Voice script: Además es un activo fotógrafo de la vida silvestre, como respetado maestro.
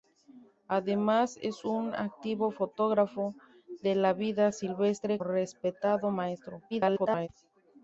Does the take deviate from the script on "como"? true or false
true